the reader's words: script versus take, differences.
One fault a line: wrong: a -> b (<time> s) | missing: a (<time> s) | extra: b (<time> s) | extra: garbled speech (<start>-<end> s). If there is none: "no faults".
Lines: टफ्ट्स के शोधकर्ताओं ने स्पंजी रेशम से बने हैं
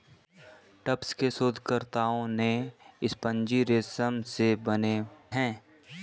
no faults